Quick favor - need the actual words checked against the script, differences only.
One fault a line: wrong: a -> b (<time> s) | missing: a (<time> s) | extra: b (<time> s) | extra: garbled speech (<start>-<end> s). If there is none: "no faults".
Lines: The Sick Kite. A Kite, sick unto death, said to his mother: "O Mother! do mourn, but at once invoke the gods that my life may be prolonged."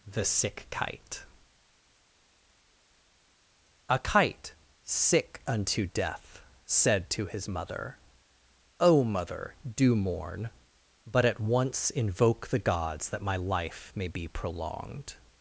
no faults